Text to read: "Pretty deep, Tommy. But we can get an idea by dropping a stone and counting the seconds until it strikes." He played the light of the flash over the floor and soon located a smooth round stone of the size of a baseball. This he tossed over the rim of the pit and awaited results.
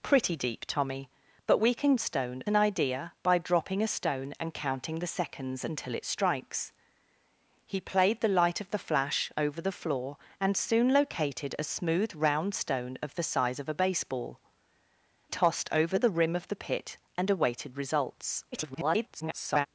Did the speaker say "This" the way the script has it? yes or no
no